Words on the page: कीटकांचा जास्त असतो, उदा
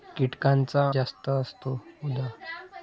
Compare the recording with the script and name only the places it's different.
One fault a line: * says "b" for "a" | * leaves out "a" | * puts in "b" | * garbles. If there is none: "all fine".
all fine